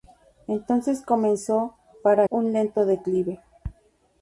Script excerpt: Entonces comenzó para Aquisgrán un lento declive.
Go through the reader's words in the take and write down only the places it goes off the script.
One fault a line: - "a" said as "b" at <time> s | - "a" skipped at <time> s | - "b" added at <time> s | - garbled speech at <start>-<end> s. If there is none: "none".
- "Aquisgrán" skipped at 2.2 s